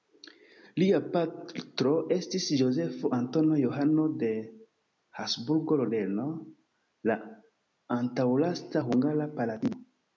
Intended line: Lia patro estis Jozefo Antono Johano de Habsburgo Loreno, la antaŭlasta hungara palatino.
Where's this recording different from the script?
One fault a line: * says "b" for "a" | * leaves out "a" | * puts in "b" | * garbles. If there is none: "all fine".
all fine